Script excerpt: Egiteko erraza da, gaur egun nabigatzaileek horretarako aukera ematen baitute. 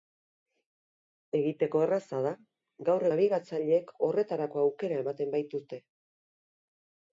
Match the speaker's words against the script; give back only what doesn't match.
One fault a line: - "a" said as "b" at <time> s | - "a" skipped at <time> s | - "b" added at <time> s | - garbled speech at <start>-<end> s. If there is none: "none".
- "egun" skipped at 3.0 s